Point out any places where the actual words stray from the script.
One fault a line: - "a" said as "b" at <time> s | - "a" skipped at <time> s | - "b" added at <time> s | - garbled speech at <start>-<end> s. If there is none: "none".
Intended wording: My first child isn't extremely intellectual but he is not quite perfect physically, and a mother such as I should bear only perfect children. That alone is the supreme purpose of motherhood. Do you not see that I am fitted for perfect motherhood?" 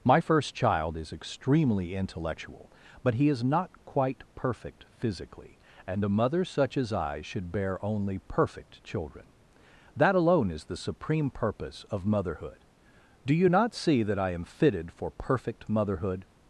- "isn't" said as "is" at 1.0 s